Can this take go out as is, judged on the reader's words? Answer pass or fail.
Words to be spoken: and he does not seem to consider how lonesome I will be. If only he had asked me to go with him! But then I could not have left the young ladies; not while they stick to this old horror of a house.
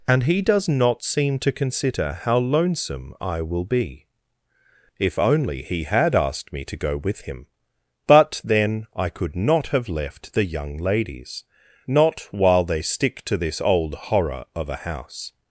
pass